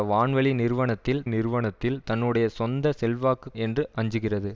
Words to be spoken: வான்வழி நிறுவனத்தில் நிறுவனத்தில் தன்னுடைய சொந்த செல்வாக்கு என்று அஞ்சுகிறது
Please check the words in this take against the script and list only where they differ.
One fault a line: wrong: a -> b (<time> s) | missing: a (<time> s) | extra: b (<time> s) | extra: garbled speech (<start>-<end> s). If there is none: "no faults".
no faults